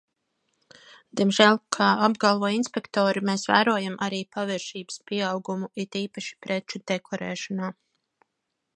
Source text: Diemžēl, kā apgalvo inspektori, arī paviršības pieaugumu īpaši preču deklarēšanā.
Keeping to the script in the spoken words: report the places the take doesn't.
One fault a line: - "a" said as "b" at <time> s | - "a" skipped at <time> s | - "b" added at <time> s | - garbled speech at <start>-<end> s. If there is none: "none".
- "mēs vērojam" added at 3.3 s
- "it" added at 5.8 s